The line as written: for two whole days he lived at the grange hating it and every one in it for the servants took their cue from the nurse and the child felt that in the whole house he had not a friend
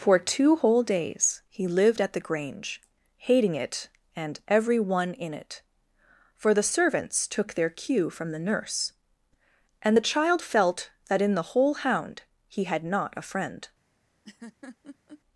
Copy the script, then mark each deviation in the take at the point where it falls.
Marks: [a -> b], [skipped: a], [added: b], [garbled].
for two whole days he lived at the grange hating it and every one in it for the servants took their cue from the nurse and the child felt that in the whole [house -> hound] he had not a friend